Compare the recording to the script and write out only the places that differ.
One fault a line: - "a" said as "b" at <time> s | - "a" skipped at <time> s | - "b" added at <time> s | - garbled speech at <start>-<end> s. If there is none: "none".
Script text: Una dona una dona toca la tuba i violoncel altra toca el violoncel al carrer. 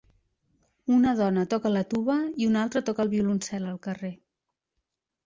- "una dona" skipped at 1.4 s
- "violoncel" said as "una" at 2.5 s